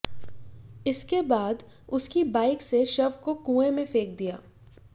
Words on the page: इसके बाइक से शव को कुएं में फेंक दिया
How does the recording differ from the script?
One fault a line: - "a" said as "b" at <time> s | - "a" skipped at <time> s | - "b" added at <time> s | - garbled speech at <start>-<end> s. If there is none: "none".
- "बाद उसकी" added at 1.2 s